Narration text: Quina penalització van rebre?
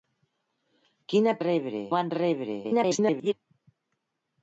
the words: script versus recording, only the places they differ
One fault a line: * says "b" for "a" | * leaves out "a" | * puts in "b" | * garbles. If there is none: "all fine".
* says "rebre" for "penalització"
* garbles